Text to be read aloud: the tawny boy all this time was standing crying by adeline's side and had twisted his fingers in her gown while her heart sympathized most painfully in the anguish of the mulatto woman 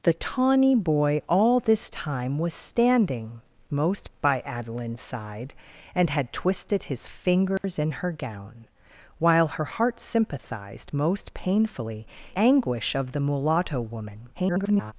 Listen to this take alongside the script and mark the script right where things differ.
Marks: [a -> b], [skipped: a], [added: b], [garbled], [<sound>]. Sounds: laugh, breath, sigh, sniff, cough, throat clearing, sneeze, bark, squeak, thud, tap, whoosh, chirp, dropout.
the tawny boy all this time was standing [crying -> most] by adeline's side and had twisted his fingers [dropout] in her gown while her heart sympathized most painfully [skipped: in the] anguish of the mulatto woman [garbled]